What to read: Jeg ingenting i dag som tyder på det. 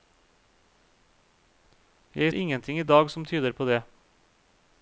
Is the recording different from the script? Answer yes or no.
no